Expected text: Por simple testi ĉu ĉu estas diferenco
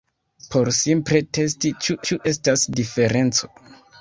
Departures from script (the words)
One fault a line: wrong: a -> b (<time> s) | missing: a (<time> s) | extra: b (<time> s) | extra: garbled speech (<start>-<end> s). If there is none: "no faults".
no faults